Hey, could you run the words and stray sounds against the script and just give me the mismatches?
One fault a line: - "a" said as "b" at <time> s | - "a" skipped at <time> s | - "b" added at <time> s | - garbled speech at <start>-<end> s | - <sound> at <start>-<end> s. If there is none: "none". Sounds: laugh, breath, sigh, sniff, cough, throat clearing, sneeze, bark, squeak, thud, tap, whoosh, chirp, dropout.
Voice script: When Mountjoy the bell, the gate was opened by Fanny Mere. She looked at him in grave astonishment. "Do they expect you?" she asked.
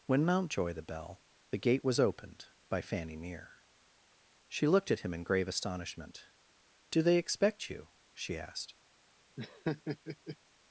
- laugh at 9.4-10.4 s